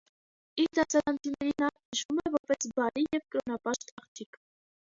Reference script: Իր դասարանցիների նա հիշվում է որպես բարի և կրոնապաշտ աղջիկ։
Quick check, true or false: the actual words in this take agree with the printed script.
true